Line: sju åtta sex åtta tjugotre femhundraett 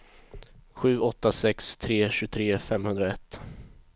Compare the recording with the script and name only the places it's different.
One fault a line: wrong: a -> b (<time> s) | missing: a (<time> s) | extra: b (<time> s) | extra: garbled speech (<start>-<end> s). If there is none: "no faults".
wrong: åtta -> tre (1.8 s)